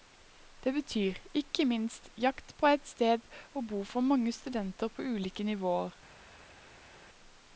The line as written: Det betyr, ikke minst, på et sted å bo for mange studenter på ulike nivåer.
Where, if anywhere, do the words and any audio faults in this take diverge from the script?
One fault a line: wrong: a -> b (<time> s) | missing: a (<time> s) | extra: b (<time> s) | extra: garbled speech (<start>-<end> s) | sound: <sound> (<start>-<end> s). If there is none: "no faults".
extra: jakt (2.2 s)